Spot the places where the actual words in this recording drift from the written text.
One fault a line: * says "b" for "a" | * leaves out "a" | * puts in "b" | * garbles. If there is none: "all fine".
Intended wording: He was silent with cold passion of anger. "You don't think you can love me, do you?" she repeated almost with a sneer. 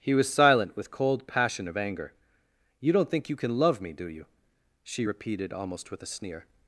all fine